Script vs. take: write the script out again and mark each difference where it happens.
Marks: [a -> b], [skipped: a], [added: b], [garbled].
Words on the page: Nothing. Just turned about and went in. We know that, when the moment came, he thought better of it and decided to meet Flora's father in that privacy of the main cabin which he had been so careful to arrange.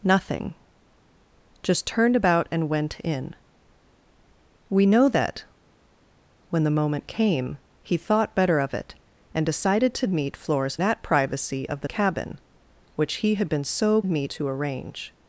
Nothing. Just turned about and went in. We know that, when the moment came, he thought better of it and decided to meet Flora's [skipped: father in] that privacy of the [skipped: main] cabin which he had been so [careful -> meet] to arrange.